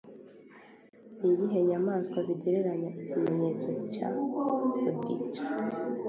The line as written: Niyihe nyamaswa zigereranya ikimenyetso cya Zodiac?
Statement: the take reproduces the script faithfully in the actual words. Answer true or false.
true